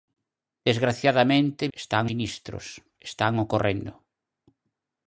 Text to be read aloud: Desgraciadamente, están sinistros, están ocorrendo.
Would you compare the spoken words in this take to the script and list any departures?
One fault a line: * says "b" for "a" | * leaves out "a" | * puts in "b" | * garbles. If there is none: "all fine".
all fine